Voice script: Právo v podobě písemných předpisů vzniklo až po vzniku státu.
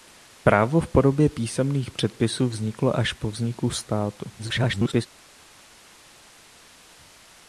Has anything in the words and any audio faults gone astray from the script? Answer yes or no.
yes